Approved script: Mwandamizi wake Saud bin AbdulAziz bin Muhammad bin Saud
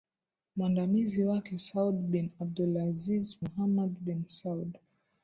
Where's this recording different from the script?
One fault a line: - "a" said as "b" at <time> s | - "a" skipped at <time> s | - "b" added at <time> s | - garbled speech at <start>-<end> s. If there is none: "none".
- "bin" skipped at 3.4 s